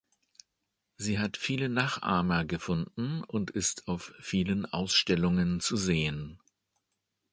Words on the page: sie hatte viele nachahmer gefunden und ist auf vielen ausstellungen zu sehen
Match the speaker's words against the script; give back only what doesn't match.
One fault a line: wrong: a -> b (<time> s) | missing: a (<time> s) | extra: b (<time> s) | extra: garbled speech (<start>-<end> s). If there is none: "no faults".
wrong: hatte -> hat (1.2 s)